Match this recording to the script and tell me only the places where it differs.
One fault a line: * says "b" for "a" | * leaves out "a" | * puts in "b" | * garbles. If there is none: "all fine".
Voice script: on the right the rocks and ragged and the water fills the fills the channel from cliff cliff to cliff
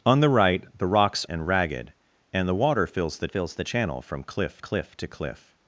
all fine